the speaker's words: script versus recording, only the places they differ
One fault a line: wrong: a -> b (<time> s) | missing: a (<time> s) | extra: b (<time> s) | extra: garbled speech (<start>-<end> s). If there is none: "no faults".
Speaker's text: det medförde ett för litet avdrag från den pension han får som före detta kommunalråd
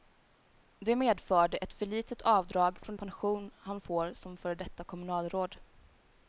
missing: den (3.0 s)